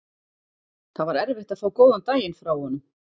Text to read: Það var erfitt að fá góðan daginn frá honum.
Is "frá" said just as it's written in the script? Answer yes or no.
yes